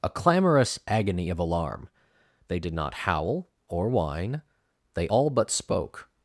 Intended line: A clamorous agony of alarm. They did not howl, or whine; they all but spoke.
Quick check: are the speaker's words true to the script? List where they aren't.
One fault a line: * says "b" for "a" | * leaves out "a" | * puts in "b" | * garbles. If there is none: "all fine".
all fine